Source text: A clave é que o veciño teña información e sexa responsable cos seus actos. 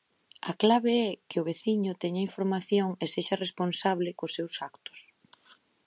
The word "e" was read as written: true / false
true